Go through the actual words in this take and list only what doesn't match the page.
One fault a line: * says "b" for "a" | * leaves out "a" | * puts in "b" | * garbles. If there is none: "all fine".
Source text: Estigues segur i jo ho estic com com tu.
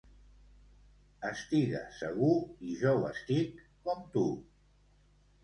* leaves out "com"